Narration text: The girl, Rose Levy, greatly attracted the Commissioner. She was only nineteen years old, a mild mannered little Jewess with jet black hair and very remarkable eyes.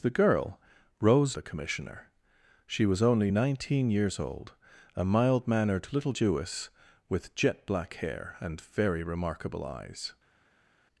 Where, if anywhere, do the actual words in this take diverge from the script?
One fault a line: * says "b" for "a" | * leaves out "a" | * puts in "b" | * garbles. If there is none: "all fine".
* leaves out "Levy greatly attracted"